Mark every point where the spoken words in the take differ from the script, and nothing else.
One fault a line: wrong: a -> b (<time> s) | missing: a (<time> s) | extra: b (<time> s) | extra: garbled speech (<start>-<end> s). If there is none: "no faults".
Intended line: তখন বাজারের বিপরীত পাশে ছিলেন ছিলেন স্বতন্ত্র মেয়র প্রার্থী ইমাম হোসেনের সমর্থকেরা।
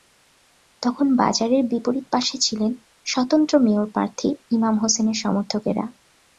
missing: ছিলেন (2.7 s)